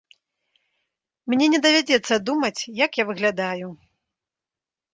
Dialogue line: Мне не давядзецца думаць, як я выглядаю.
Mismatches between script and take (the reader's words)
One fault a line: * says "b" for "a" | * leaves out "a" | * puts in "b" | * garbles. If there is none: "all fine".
all fine